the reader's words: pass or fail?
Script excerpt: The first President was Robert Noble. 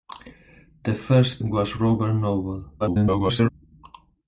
fail